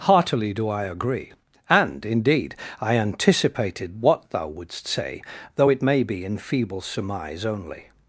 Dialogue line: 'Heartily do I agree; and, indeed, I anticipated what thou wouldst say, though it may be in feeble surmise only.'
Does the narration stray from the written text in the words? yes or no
no